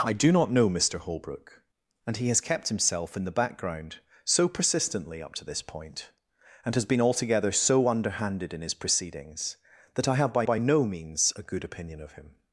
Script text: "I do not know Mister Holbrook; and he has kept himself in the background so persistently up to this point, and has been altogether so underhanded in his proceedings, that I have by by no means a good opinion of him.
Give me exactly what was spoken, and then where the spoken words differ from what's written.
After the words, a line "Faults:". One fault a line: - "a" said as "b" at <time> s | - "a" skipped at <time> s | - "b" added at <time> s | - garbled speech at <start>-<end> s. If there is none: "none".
"I do not know Mister Holbrook; and he has kept himself in the background so persistently up to this point, and has been altogether so underhanded in his proceedings, that I have by by no means a good opinion of him.
Faults:
none